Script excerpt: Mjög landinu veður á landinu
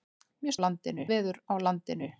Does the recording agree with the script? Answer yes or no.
yes